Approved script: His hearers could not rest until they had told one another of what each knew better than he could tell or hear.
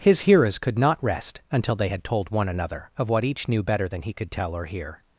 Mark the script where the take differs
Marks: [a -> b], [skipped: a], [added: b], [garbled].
His hearers could not rest until they had told one another of what each knew better than he could tell or hear.